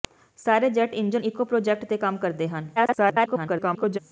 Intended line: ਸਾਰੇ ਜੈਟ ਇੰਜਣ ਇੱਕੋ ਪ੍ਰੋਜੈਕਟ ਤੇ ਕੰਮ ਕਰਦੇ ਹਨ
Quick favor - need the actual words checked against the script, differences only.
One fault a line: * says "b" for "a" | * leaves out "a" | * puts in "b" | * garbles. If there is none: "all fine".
* garbles